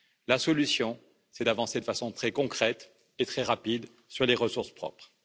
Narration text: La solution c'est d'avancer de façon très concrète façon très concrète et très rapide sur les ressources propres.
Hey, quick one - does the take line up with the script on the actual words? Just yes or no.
no